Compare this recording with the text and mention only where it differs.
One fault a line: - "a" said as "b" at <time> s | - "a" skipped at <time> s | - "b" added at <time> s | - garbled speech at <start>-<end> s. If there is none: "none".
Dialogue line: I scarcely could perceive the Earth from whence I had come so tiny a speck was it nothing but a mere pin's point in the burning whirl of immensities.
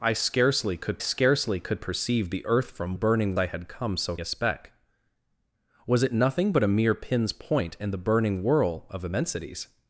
- "scarcely could" added at 1.0 s
- "whence" said as "burning" at 2.9 s
- "tiny" skipped at 4.2 s